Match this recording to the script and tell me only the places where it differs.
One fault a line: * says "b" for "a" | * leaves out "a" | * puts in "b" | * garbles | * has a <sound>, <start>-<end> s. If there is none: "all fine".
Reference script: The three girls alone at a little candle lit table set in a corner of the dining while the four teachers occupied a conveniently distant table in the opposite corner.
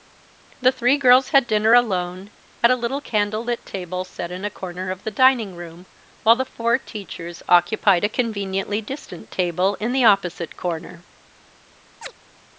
* puts in "had dinner"
* puts in "room"
* has a chirp, 12.0-12.1 s